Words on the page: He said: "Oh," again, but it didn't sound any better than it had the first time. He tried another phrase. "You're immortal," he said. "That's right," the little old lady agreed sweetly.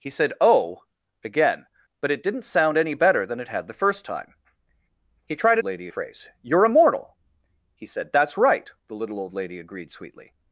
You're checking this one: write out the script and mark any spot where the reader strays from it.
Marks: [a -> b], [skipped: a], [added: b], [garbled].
He said: "Oh," again, but it didn't sound any better than it had the first time. He tried [another -> lady] phrase. "You're immortal," he said. "That's right," the little old lady agreed sweetly.